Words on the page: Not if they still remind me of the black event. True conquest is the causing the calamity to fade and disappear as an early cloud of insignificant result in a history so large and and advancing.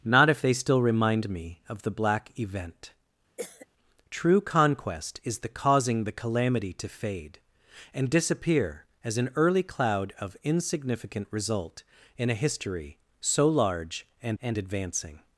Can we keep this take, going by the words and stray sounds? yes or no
no